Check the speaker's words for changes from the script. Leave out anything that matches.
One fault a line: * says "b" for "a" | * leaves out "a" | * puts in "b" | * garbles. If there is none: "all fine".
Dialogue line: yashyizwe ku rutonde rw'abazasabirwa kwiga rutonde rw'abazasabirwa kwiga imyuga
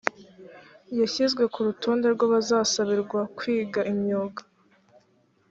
* leaves out "rutonde rw'abazasabirwa kwiga"